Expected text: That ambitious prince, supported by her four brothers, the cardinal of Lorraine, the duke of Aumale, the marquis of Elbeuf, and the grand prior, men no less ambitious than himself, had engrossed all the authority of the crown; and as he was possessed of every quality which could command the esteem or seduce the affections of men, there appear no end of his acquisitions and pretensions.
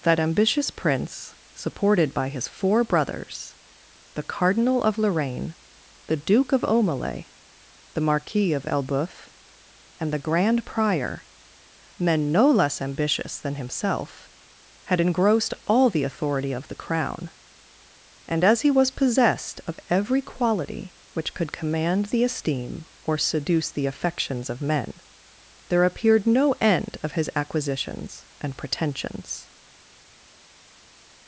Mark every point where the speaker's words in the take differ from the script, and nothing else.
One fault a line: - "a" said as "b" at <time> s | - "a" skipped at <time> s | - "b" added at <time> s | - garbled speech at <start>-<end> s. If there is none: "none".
- "her" said as "his" at 2.3 s
- "appear" said as "appeared" at 25.8 s